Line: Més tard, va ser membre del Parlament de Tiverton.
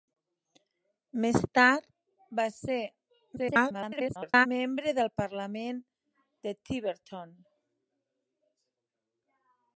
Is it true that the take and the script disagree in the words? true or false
true